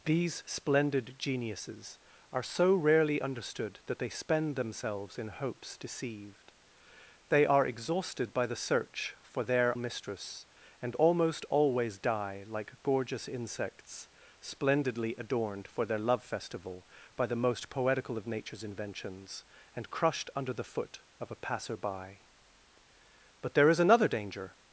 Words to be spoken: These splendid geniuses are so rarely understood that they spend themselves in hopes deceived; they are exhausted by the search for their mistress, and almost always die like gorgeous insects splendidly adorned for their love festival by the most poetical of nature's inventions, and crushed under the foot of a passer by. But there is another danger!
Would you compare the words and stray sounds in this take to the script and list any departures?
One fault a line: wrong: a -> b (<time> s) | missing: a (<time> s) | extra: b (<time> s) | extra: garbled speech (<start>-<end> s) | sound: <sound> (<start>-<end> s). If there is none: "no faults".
no faults